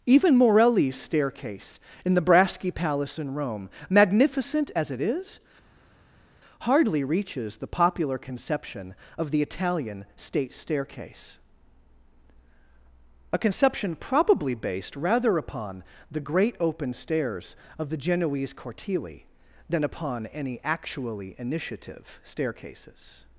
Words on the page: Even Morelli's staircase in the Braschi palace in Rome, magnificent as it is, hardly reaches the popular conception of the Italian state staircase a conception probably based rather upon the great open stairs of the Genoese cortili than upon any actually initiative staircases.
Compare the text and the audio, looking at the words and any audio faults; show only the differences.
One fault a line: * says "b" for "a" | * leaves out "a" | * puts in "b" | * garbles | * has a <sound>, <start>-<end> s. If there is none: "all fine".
all fine